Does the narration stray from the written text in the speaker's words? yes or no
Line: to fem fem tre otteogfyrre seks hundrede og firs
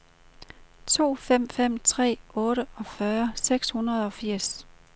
no